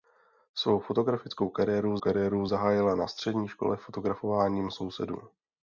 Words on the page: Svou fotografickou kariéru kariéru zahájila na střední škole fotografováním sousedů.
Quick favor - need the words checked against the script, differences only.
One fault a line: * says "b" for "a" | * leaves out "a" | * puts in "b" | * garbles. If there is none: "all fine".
all fine